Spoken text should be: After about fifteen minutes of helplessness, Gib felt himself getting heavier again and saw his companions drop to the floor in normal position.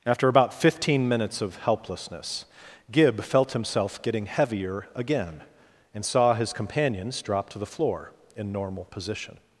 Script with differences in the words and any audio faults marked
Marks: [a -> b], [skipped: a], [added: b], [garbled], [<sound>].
After about fifteen minutes of helplessness, Gib felt himself getting heavier again and saw his companions drop to the floor in normal position.